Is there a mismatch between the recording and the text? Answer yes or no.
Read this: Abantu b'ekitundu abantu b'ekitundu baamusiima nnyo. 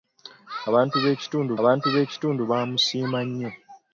no